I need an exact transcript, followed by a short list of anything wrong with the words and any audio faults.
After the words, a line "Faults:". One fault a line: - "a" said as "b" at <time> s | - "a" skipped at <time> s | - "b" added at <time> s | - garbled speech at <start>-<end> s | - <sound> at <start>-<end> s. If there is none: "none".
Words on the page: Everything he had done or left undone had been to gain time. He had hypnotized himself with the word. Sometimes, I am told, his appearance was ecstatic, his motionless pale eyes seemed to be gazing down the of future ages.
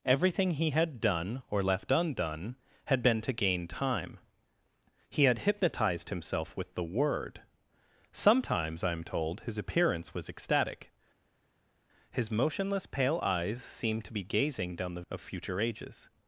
Everything he had done or left undone had been to gain time. He had hypnotized himself with the word. Sometimes, I am told, his appearance was ecstatic, his motionless pale eyes seemed to be gazing down the of future ages.
Faults:
none